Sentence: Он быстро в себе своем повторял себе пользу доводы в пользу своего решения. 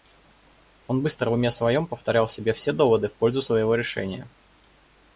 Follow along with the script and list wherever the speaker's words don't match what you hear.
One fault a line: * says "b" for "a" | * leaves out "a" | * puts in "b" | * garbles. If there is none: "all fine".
* says "уме" for "себе"
* says "все" for "пользу"